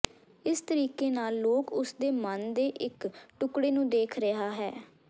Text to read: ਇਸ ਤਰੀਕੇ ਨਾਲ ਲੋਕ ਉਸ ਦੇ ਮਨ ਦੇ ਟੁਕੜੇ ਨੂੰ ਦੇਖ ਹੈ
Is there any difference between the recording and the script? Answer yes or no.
yes